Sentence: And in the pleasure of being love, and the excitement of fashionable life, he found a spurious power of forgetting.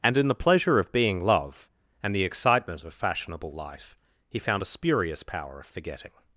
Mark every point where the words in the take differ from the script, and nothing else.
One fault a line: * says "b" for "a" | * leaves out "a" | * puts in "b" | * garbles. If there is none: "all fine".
all fine